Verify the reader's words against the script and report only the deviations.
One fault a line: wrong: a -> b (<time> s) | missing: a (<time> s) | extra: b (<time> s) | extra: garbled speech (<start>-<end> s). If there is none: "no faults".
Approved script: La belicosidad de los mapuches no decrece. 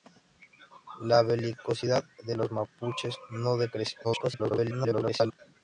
extra: garbled speech (4.0-5.4 s)